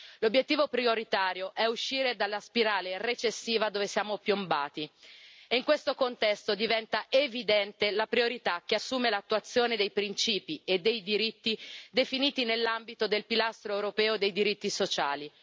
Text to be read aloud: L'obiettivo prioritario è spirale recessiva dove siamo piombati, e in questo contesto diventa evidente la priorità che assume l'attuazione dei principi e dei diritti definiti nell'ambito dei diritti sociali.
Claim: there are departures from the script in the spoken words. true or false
true